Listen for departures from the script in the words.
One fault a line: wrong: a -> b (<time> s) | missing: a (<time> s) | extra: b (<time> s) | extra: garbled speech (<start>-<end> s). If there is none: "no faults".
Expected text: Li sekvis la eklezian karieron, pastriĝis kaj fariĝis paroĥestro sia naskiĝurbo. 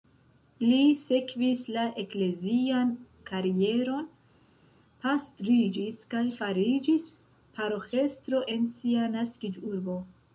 extra: en (8.5 s)